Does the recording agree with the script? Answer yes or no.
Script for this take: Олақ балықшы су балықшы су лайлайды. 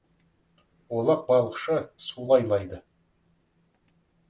no